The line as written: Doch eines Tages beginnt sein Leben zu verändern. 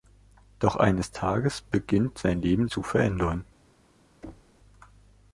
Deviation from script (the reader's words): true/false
false